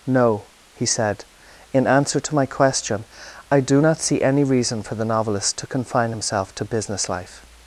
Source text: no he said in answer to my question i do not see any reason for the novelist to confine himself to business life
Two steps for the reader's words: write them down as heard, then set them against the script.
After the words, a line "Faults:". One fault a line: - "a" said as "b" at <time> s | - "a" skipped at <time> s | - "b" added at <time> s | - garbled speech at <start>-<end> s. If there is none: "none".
no he said in answer to my question i do not see any reason for the novelist to confine himself to business life
Faults:
none